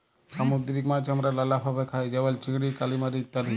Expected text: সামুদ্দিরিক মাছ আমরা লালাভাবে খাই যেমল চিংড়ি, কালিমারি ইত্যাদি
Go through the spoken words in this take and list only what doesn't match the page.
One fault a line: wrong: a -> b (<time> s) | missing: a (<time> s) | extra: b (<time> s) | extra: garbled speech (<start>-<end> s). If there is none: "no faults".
no faults